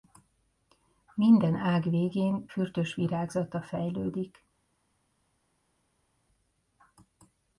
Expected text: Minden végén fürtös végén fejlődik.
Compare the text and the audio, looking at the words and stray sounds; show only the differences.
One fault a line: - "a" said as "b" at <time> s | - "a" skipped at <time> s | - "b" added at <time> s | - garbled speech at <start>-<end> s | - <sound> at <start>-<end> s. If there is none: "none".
- "ág" added at 1.6 s
- "végén" said as "virágzata" at 2.9 s